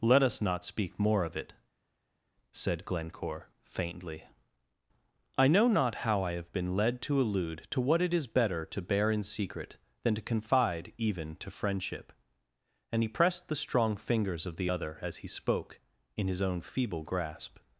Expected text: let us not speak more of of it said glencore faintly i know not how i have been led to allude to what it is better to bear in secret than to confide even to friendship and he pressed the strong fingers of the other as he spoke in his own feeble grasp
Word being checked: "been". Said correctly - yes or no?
yes